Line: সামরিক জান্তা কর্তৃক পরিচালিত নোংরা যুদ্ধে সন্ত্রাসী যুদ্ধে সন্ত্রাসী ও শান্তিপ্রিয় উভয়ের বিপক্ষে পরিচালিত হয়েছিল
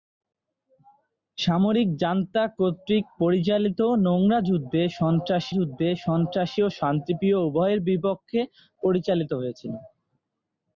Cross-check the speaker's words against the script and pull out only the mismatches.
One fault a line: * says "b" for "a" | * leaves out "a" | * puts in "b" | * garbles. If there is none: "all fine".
all fine